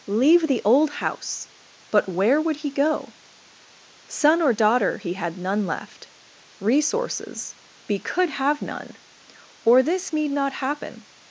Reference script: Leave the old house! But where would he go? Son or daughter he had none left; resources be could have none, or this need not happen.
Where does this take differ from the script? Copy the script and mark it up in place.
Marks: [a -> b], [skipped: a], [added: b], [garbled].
Leave the old house! But where would he go? Son or daughter he had none left; resources be could have none, or this need not happen.